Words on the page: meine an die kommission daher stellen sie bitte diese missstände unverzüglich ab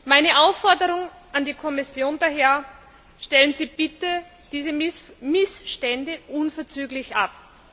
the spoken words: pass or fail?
fail